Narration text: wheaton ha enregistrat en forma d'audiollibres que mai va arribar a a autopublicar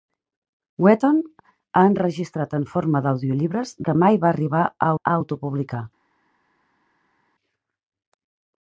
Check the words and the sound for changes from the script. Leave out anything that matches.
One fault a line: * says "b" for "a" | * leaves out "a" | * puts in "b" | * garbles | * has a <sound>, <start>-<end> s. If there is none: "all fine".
all fine